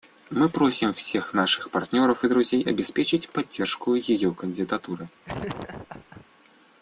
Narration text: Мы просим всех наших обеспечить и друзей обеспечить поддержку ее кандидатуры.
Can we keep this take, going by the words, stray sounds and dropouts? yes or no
no